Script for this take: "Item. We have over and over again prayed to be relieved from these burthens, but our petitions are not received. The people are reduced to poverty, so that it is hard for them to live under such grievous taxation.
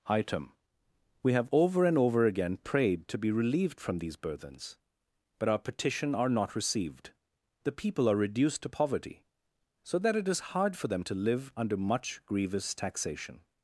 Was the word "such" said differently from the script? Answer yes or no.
yes